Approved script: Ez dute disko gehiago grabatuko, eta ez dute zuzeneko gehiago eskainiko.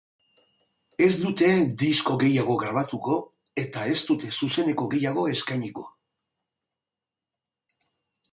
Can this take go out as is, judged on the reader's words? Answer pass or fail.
pass